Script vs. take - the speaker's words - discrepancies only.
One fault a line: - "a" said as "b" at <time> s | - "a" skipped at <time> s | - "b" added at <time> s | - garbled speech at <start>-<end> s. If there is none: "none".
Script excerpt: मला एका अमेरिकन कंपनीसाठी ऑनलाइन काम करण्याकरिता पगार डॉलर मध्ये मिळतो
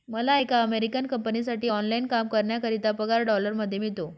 none